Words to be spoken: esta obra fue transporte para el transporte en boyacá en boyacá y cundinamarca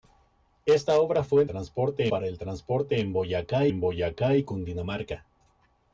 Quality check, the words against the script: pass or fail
pass